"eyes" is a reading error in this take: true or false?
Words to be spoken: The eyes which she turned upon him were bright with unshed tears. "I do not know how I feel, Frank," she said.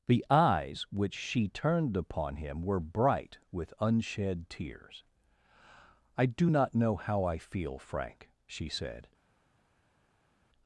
false